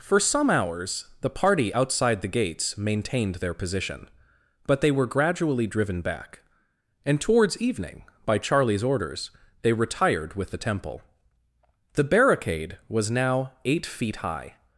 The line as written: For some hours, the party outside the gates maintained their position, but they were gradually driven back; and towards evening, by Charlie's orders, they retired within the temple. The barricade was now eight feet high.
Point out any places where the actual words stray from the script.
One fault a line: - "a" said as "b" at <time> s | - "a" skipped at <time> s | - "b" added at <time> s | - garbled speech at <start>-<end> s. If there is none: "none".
- "within" said as "with" at 10.3 s